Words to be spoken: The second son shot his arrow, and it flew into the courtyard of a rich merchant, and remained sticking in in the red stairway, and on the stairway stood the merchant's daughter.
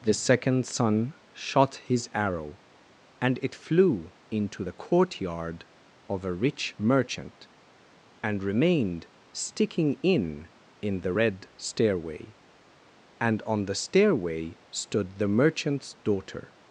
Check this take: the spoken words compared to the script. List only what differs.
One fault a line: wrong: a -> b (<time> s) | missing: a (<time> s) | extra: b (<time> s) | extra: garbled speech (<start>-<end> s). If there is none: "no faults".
no faults